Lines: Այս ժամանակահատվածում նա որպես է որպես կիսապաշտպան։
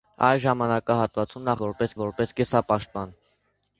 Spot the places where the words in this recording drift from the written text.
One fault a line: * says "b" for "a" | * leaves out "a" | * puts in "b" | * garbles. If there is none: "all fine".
all fine